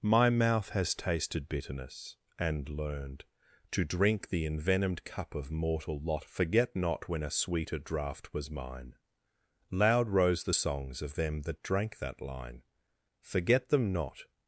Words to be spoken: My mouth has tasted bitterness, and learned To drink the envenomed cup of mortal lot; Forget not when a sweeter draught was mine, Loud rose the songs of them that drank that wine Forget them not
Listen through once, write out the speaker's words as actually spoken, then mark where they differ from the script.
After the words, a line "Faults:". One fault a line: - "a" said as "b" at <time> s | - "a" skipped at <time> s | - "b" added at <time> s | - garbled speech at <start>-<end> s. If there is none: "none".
My mouth has tasted bitterness, and learned To drink the envenomed cup of mortal lot; Forget not when a sweeter draught was mine, Loud rose the songs of them that drank that line Forget them not
Faults:
- "wine" said as "line" at 12.2 s